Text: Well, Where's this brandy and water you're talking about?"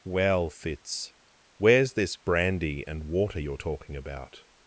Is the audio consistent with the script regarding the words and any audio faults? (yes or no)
no